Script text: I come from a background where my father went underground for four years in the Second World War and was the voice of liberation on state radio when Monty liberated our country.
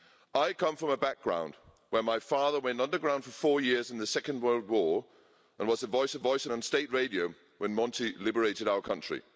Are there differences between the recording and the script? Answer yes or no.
yes